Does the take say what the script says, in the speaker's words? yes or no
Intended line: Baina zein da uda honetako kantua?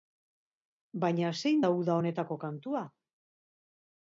yes